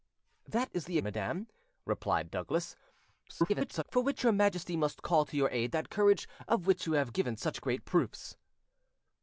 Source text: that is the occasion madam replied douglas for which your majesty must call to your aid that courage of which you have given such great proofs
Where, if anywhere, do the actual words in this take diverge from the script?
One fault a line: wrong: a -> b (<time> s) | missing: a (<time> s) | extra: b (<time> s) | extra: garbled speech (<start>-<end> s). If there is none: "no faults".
missing: occasion (1.0 s)
extra: garbled speech (3.3-3.8 s)